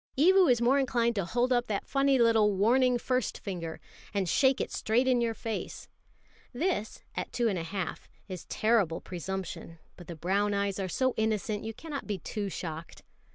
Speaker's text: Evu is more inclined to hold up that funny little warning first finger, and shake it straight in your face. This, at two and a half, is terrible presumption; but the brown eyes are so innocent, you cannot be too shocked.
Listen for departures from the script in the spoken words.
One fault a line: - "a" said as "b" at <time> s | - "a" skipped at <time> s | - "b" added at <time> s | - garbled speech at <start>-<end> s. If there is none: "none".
none